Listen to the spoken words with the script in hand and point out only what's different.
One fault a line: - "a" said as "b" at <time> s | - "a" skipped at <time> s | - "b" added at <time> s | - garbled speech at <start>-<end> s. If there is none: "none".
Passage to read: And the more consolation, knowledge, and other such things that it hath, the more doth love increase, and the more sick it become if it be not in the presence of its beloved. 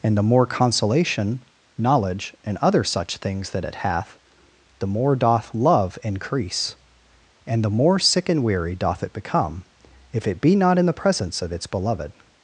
- "and weary doth" added at 8.3 s